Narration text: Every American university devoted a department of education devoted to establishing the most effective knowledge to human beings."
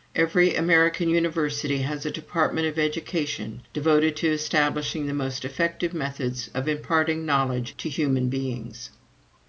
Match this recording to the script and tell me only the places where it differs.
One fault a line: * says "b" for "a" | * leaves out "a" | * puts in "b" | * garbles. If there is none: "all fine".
* says "has" for "devoted"
* puts in "methods of imparting"